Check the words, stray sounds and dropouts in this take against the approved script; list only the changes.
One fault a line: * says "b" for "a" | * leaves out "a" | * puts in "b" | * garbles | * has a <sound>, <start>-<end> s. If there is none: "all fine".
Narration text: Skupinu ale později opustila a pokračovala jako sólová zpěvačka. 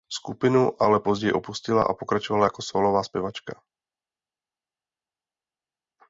all fine